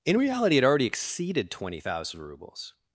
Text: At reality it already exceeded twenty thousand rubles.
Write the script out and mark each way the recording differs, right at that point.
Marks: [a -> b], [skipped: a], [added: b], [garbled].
[At -> In] reality it already exceeded twenty thousand rubles.